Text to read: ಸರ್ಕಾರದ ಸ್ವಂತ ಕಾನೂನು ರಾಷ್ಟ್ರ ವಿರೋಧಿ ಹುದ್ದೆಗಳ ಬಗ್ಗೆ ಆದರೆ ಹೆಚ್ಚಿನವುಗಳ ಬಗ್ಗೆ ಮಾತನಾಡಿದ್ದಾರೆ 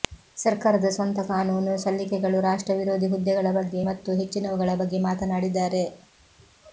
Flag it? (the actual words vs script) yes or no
yes